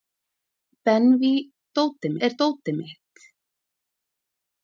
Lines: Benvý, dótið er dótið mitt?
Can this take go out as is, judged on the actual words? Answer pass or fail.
pass